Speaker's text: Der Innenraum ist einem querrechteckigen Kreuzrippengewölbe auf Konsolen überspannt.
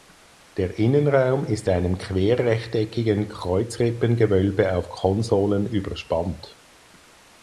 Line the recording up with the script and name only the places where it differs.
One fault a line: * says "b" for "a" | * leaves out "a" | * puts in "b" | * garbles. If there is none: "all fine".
all fine